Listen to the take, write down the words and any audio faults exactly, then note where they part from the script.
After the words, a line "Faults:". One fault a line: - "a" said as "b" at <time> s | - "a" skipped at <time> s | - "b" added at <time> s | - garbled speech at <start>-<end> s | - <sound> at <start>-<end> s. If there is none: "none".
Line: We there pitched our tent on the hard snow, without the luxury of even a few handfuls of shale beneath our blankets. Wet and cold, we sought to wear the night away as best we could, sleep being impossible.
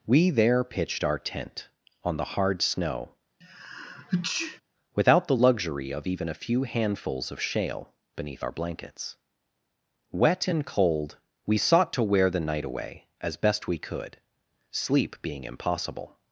We there pitched our tent on the hard snow, without the luxury of even a few handfuls of shale beneath our blankets. Wet and cold, we sought to wear the night away as best we could, sleep being impossible.
Faults:
- sneeze at 3.4-4.6 s